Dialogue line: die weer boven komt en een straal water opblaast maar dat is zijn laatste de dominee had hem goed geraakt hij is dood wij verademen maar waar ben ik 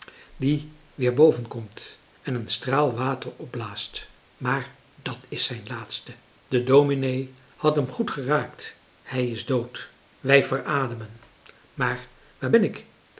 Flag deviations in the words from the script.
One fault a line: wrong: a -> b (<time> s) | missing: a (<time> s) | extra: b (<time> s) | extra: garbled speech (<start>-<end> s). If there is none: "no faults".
no faults